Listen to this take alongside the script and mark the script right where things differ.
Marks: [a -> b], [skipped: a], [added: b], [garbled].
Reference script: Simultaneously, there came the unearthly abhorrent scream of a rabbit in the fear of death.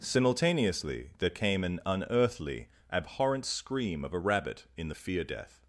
Simultaneously, there came [the -> an] unearthly abhorrent scream of a rabbit in the fear [skipped: of] death.